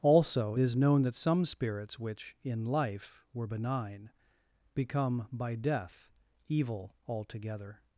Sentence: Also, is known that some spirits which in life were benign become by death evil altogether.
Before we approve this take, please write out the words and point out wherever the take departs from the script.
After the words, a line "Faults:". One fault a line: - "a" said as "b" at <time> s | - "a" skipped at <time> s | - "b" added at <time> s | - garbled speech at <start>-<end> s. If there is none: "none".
Also, is known that some spirits which in life were benign become by death evil altogether.
Faults:
none